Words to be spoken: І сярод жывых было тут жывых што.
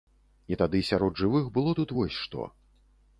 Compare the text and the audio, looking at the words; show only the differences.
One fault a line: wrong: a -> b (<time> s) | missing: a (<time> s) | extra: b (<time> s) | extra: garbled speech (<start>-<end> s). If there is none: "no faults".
extra: тады (0.6 s)
wrong: жывых -> вось (2.0 s)